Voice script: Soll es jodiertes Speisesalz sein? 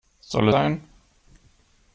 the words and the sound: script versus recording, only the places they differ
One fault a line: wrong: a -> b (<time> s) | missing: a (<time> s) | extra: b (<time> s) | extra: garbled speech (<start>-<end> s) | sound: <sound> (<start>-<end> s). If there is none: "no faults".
missing: es jodiertes Speisesalz (0.5 s)